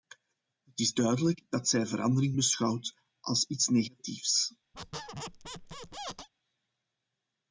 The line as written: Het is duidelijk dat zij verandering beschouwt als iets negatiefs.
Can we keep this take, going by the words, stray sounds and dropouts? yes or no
no